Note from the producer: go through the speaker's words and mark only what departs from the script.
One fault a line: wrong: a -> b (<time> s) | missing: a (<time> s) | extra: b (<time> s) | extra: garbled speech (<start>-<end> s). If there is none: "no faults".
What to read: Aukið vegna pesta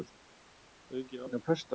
no faults